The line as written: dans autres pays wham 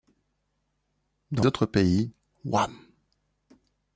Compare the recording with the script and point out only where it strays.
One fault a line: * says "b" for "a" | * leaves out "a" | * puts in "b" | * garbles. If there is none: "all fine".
all fine